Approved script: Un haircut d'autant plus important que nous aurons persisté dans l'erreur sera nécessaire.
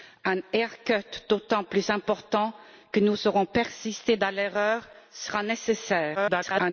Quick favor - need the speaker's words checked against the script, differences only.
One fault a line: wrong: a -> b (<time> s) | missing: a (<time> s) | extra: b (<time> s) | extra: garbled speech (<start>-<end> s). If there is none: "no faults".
extra: garbled speech (6.1-6.7 s)